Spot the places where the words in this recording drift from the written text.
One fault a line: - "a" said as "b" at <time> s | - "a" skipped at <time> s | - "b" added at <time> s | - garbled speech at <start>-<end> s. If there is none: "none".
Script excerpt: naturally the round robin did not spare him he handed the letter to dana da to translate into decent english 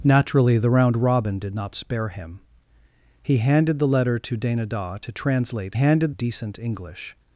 - "into" said as "handed" at 5.7 s